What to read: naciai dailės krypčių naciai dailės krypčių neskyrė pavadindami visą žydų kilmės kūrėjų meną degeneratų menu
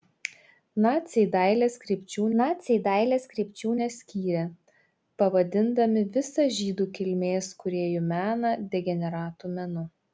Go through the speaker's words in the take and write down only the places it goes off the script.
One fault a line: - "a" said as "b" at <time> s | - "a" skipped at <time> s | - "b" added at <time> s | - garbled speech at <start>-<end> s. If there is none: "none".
none